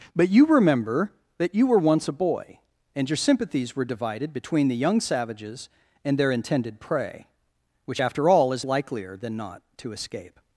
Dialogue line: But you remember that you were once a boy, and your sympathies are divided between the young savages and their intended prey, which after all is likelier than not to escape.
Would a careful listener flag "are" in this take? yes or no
yes